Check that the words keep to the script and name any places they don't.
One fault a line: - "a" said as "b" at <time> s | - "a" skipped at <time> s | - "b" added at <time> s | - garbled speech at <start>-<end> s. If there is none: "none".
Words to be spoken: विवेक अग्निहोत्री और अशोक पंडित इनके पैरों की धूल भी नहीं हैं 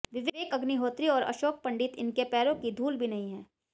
none